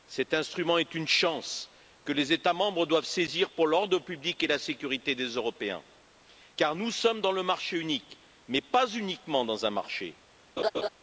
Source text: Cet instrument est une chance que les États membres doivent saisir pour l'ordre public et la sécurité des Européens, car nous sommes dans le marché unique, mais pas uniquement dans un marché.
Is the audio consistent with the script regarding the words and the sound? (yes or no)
no